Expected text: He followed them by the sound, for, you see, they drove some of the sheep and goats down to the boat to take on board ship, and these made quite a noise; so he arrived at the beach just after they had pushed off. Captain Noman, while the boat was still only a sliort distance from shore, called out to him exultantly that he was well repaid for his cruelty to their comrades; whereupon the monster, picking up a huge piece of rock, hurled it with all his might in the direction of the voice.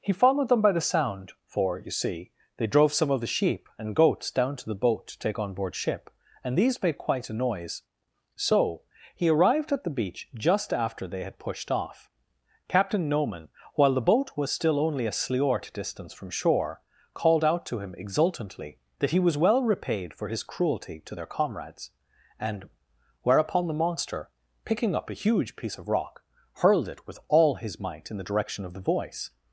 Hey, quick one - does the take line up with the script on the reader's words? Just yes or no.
no